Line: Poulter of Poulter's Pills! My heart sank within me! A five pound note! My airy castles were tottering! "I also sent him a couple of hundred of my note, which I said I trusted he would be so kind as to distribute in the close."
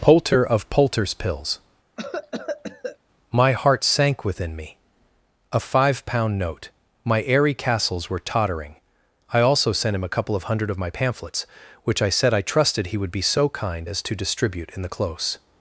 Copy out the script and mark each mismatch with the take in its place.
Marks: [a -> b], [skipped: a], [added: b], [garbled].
Poulter of Poulter's Pills! My heart sank within me! A five pound note! My airy castles were tottering! "I also sent him a couple of hundred of my [note, -> pamphlets] which I said I trusted he would be so kind as to distribute in the close."